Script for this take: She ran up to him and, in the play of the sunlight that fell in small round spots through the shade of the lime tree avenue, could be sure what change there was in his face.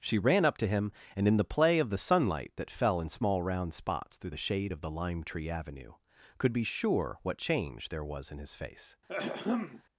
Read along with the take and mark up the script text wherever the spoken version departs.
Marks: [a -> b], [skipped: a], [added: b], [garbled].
She ran up to him and, in the play of the sunlight that fell in small round spots through the shade of the lime tree avenue, could be sure what change there was in his face.